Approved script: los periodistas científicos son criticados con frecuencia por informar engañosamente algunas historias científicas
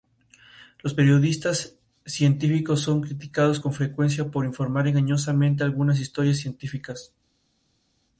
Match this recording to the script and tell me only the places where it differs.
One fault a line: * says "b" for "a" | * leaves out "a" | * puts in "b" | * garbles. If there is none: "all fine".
all fine